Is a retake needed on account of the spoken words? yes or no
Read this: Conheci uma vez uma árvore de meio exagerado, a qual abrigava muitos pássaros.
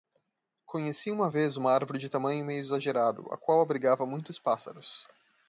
yes